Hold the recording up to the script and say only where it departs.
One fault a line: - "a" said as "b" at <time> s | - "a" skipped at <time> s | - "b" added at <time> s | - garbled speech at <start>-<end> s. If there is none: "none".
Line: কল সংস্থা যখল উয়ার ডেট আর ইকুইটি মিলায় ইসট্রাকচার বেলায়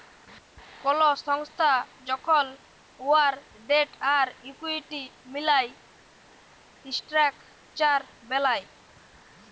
none